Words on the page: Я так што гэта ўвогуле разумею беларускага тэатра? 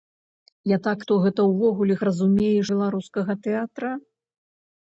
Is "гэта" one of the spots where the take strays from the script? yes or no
no